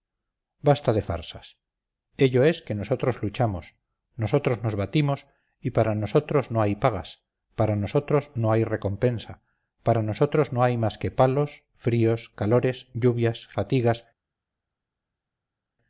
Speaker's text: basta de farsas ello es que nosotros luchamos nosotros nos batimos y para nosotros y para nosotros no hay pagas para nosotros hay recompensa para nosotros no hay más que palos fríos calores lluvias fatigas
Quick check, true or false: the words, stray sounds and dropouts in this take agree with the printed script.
false